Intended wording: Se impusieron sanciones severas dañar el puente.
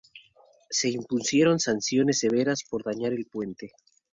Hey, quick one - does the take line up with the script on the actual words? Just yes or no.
no